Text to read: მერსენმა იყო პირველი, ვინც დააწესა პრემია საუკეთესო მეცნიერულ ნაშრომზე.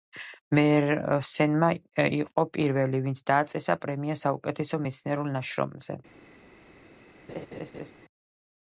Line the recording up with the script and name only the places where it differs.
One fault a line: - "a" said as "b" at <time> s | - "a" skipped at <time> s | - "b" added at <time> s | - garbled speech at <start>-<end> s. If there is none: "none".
none